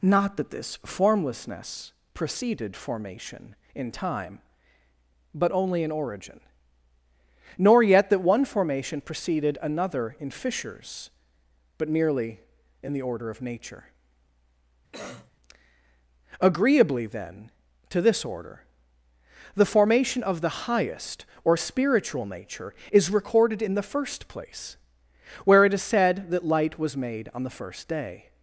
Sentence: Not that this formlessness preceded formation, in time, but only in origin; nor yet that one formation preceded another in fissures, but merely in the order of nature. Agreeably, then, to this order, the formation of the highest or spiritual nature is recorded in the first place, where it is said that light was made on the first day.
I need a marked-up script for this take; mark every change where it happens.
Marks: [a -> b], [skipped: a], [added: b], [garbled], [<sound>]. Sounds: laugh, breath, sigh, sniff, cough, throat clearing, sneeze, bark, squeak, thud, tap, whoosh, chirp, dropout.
Not that this formlessness preceded formation, in time, but only in origin; nor yet that one formation preceded another in fissures, but merely in the order of nature. [cough] Agreeably, then, to this order, the formation of the highest or spiritual nature is recorded in the first place, where it is said that light was made on the first day.